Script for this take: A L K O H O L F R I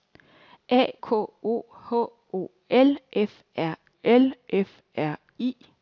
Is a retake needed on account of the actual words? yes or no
yes